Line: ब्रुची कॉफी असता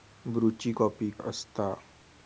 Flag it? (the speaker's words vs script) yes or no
no